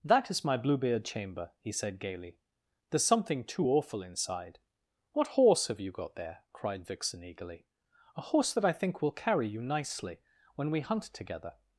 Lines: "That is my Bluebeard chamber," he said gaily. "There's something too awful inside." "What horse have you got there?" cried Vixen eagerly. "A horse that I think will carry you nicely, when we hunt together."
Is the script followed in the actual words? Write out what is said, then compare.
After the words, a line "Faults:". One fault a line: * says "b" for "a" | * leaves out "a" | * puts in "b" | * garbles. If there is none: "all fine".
"That is my Bluebeard chamber," he said gaily. "There's something too awful inside." "What horse have you got there?" cried Vixen eagerly. "A horse that I think will carry you nicely, when we hunt together."
Faults:
all fine